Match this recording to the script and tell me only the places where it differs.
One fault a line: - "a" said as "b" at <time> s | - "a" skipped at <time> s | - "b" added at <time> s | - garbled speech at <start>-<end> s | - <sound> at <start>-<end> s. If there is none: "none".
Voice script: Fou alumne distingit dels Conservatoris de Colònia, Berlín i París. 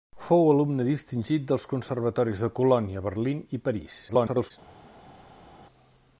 - garbled speech at 4.1-4.5 s